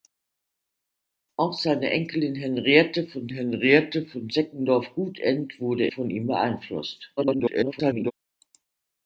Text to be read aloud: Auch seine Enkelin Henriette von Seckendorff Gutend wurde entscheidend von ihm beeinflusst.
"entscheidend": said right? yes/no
no